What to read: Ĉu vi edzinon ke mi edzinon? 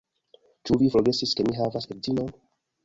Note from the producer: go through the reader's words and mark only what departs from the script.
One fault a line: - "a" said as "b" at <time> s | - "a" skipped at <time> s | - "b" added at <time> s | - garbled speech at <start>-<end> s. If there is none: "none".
- "edzinon" said as "forgesis" at 0.9 s
- "havas" added at 1.6 s